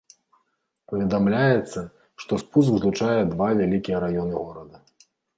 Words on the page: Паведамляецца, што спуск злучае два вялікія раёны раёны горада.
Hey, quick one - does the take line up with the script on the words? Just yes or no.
no